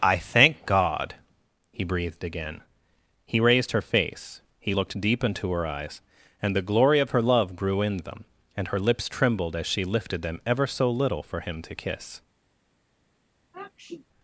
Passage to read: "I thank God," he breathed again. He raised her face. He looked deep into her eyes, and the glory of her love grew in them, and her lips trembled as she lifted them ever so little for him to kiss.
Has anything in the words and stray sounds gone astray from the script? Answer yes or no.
yes